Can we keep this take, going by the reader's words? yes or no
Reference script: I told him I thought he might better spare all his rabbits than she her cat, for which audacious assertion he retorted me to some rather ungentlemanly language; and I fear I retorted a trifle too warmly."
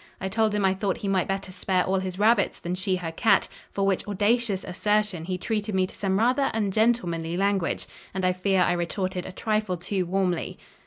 no